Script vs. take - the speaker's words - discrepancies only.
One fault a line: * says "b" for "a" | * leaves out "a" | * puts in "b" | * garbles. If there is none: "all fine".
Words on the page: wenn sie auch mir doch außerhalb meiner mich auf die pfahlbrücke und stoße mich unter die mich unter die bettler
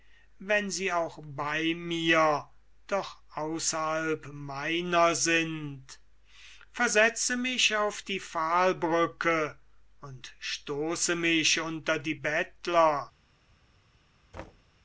* puts in "bei"
* puts in "sind versetze"
* leaves out "mich unter die"